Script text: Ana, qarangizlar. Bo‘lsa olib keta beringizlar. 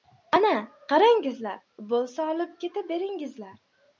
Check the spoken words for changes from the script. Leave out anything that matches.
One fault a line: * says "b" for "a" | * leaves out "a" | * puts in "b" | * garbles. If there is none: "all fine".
all fine